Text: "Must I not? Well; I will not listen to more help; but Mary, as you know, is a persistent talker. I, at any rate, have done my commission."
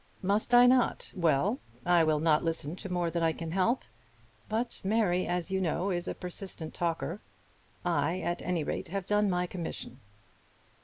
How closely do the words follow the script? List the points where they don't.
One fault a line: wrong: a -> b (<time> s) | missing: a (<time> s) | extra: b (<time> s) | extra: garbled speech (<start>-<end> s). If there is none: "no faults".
extra: than I can (3.1 s)